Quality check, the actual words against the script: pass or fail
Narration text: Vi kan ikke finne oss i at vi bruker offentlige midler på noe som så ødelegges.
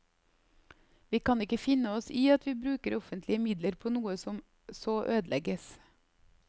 pass